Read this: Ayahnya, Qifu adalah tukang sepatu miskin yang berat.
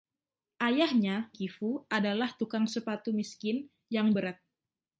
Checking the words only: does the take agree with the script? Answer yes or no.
yes